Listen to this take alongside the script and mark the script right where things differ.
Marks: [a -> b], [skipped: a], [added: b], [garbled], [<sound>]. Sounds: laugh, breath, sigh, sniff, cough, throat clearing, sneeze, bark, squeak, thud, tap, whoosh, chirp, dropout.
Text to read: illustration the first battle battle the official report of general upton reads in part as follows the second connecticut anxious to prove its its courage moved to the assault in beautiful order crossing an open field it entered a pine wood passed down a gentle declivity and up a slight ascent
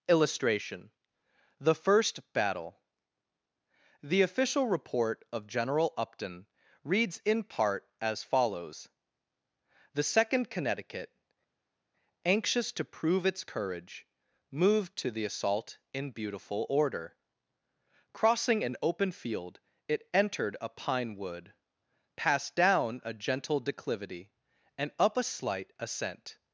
illustration the first battle [skipped: battle] the official report of general upton reads in part as follows the second connecticut anxious to prove its [skipped: its] courage moved to the assault in beautiful order crossing an open field it entered a pine wood passed down a gentle declivity and up a slight ascent